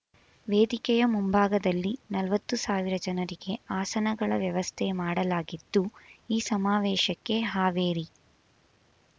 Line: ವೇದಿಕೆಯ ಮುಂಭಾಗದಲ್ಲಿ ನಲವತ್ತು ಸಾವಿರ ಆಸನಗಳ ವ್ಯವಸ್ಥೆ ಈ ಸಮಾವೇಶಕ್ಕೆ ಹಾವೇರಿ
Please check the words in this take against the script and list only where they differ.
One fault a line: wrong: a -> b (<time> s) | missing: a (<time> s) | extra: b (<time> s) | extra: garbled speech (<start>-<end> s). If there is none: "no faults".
extra: ಜನರಿಗೆ (3.0 s)
extra: ಮಾಡಲಾಗಿದ್ದು (5.0 s)